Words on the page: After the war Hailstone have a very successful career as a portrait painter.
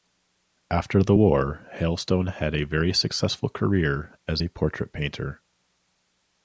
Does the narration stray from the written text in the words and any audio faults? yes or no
yes